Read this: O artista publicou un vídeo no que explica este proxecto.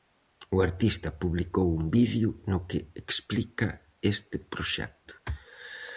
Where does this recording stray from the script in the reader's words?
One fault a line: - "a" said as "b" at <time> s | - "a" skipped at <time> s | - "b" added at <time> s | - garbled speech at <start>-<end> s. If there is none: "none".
none